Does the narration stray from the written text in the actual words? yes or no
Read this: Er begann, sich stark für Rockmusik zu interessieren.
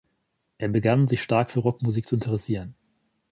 no